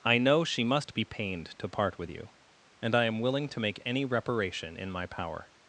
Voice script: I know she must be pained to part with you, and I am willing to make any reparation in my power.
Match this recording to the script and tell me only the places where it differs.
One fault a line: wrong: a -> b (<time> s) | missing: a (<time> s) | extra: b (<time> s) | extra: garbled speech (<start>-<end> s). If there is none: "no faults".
no faults